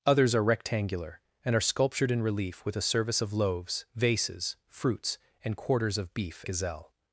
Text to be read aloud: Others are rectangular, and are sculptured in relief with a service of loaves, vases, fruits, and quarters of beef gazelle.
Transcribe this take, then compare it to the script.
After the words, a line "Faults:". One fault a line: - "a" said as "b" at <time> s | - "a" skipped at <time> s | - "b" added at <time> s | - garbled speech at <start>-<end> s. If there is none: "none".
Others are rectangular, and are sculptured in relief with a service of loaves, vases, fruits, and quarters of beef gazelle.
Faults:
none